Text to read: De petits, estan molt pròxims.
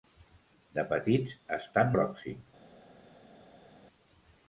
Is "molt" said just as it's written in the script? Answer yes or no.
no